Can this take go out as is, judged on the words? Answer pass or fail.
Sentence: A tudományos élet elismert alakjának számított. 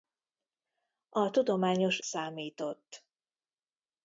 fail